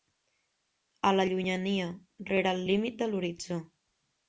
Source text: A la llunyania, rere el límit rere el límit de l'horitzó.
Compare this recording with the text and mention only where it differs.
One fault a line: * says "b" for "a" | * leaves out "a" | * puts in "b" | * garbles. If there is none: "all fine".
* leaves out "rere el límit"